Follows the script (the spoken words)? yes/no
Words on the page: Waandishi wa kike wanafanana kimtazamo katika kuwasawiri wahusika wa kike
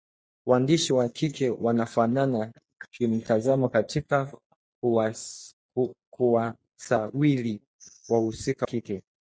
no